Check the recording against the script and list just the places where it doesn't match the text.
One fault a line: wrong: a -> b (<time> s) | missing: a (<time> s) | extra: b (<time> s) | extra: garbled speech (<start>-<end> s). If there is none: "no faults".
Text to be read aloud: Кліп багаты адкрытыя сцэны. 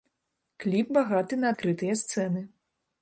extra: на (1.4 s)